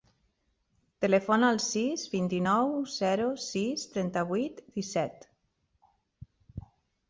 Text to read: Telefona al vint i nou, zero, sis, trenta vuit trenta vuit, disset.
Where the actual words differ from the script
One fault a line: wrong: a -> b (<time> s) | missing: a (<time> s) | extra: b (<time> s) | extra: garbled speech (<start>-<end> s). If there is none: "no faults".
extra: sis (1.6 s)
missing: trenta vuit (4.7 s)